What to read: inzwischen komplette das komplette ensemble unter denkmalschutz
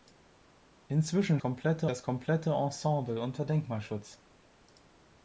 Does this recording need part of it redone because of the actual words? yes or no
no